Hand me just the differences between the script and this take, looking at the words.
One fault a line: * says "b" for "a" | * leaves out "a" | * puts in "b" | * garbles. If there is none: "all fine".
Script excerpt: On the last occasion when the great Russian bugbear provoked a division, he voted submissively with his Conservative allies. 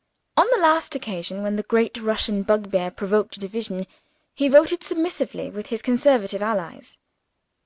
all fine